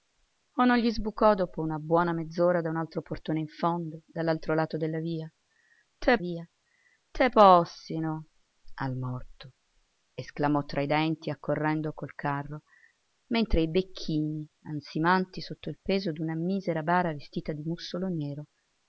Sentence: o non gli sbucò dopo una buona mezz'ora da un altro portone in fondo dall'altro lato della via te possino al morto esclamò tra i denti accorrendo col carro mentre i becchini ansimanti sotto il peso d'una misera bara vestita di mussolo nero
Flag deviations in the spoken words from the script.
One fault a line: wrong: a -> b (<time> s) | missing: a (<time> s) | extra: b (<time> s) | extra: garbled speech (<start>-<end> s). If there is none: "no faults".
extra: via te (6.2 s)